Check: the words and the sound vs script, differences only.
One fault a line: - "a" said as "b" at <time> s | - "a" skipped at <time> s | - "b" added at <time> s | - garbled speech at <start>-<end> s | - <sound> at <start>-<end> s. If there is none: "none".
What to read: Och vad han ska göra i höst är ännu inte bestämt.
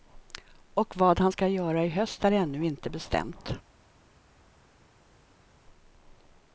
none